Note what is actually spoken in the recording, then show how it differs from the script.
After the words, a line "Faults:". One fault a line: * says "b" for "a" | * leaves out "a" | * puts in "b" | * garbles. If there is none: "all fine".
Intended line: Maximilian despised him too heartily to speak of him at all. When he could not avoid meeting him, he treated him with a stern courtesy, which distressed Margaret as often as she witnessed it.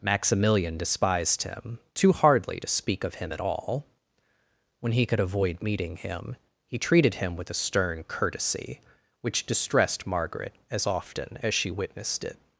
Maximilian despised him too hardly to speak of him at all. When he could avoid meeting him, he treated him with a stern courtesy, which distressed Margaret as often as she witnessed it.
Faults:
* says "hardly" for "heartily"
* leaves out "not"